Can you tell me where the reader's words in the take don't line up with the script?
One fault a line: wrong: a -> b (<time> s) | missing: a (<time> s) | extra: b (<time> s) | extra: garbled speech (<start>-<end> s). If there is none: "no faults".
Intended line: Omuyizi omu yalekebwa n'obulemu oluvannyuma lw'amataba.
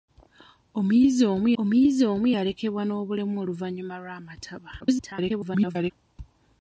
extra: omuyizi omu (1.6 s)
extra: garbled speech (4.8-5.9 s)